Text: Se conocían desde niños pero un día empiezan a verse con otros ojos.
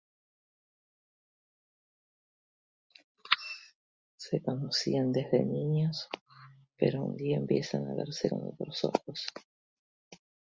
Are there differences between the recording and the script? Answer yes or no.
no